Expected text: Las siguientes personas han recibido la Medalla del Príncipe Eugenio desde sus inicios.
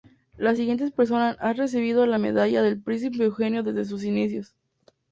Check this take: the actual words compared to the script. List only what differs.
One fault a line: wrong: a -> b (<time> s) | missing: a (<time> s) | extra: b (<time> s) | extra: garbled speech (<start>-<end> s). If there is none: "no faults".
no faults